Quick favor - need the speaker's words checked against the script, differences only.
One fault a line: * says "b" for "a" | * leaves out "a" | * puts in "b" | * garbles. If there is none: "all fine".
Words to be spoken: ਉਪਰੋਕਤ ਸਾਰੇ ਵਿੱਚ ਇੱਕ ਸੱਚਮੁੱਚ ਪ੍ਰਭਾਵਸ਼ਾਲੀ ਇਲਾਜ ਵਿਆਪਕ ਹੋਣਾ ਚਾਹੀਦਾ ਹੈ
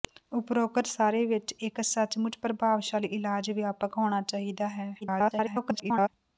* garbles